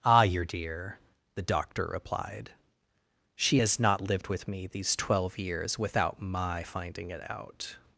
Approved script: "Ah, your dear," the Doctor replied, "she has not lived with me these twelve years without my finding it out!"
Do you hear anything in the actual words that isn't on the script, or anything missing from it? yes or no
no